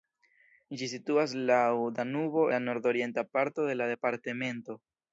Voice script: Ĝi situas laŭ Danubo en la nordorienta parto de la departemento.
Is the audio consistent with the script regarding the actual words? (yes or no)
no